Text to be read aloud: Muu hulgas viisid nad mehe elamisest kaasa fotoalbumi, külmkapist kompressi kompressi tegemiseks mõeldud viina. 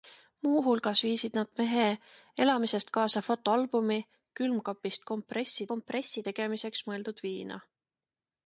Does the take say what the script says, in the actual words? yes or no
yes